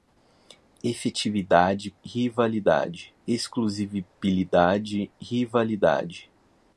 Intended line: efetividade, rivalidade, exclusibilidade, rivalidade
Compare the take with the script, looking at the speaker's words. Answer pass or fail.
pass